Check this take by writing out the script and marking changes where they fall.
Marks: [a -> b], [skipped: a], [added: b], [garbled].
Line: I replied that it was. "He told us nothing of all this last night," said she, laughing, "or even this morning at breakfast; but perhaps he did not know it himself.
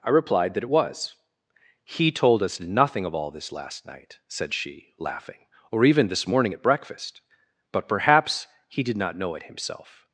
I replied that it was. "He told us nothing of all this last night," said she, laughing, "or even this morning at breakfast; but perhaps he did not know it himself.